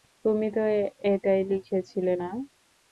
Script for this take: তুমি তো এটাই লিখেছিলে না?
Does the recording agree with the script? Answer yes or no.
yes